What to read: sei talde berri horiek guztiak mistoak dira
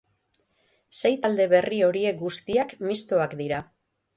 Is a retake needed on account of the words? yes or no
no